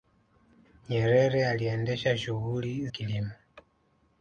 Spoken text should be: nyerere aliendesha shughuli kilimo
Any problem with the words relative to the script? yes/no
no